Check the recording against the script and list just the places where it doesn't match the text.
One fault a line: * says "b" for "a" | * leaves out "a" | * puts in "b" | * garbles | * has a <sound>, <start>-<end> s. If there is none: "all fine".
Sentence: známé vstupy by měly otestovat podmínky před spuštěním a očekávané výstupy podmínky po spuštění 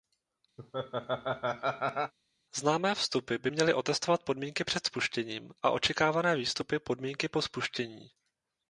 * has a laugh, 0.6-2.1 s